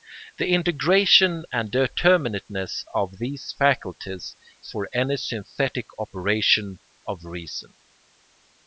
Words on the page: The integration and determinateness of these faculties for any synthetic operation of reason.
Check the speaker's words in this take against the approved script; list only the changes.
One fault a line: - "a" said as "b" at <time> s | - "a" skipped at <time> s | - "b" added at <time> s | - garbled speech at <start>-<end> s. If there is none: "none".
none